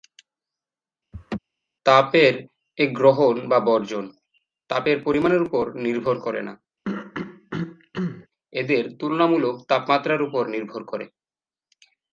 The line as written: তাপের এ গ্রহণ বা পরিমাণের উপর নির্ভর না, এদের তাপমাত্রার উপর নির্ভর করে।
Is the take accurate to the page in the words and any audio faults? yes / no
no